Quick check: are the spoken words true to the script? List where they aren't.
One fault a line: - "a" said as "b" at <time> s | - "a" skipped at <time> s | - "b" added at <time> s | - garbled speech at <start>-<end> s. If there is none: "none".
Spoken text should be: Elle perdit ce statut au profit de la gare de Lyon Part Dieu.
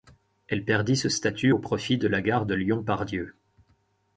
none